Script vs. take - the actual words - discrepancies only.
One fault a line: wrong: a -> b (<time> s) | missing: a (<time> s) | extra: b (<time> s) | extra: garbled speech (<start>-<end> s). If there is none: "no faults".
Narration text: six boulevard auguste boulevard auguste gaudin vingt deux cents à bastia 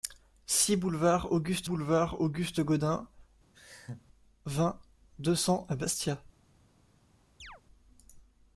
no faults